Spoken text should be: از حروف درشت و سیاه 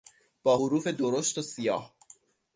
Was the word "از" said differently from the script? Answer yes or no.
yes